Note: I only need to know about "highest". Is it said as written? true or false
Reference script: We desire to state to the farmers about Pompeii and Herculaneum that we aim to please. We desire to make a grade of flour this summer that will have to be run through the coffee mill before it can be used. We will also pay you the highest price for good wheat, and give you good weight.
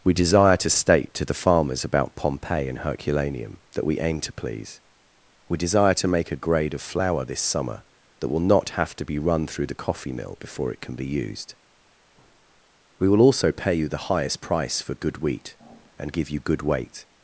true